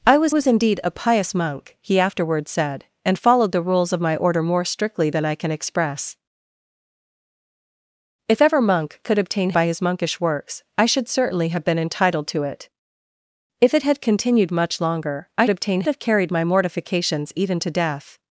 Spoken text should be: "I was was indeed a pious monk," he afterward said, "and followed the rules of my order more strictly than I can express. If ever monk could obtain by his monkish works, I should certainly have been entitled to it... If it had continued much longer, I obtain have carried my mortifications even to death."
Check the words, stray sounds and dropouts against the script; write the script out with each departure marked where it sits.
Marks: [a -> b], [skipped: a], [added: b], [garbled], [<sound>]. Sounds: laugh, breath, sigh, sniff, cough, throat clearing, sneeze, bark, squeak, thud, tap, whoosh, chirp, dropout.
"I was was indeed a pious monk," he afterward said, "and followed the rules of my order more strictly than I can express. If ever monk could obtain by his monkish works, I should certainly have been entitled to it... If it had continued much longer, I obtain have carried my mortifications even to death."